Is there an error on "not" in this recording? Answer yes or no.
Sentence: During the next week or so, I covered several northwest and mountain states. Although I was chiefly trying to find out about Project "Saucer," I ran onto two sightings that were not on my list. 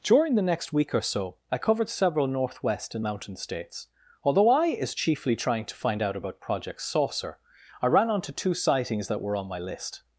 yes